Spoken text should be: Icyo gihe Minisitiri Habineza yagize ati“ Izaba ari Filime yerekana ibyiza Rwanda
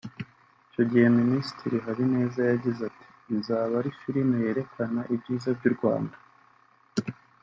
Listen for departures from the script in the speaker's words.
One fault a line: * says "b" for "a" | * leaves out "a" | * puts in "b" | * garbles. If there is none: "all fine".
* puts in "by'u"